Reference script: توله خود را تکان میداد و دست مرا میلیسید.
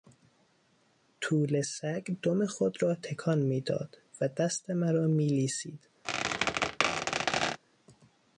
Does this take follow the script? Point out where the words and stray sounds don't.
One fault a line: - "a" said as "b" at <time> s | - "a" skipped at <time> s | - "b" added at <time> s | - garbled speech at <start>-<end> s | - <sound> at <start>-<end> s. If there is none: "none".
- "سگ دم" added at 1.6 s
- squeak at 6.0-7.6 s